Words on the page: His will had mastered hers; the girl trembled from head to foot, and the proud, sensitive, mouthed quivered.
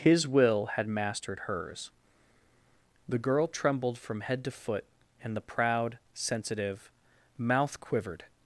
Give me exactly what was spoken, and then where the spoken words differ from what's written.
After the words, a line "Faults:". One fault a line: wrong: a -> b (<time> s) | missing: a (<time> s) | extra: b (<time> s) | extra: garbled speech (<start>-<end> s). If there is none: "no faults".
His will had mastered hers; the girl trembled from head to foot, and the proud, sensitive, mouth quivered.
Faults:
wrong: mouthed -> mouth (7.4 s)